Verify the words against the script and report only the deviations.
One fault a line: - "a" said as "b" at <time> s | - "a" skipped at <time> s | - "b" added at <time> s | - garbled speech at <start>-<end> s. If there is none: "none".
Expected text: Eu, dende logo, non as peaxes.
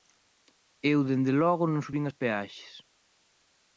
- "subín" added at 1.8 s